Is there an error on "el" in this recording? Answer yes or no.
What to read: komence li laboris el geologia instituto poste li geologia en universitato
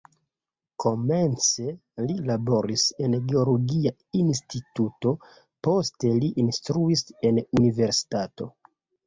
yes